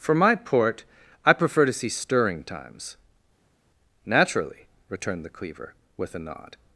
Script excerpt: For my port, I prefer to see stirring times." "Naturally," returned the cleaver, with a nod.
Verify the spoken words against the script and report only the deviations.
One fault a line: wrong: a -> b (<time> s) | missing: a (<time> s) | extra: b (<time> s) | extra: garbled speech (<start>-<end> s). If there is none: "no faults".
no faults